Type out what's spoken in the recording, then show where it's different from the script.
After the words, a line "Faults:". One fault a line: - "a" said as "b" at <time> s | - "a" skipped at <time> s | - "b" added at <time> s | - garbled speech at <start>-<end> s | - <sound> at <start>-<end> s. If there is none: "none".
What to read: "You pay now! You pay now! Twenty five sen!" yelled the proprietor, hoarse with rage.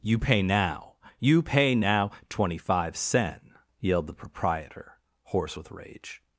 "You pay now! You pay now! Twenty five sen!" yelled the proprietor, hoarse with rage.
Faults:
none